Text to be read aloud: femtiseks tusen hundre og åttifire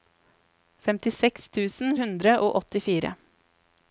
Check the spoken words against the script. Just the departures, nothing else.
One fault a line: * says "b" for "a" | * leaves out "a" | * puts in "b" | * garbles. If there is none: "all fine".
all fine